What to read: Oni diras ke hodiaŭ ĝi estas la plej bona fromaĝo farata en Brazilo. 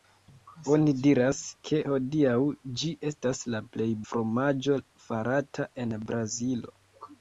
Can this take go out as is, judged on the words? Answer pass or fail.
fail